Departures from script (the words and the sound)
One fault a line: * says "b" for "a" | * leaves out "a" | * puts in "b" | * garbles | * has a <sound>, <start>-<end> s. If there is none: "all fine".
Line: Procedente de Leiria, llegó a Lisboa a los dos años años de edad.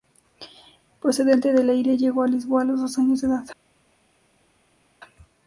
* leaves out "años"